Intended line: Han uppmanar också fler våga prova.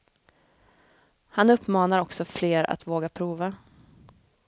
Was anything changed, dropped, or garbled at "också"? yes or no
no